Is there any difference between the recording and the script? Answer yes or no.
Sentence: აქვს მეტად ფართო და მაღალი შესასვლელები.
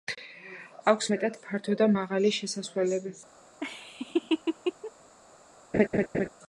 no